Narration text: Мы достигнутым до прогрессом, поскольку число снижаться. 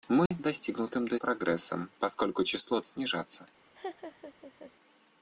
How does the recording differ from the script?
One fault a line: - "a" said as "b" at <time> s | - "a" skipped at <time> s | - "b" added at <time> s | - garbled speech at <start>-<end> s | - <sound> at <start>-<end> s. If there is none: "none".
- dropout at 0.3-0.3 s
- laugh at 3.7-4.7 s